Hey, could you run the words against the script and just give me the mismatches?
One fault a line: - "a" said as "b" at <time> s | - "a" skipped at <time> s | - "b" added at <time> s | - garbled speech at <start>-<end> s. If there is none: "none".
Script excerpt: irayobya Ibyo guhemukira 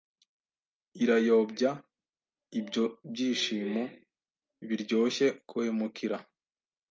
- "byishimo biryoshye" added at 3.1 s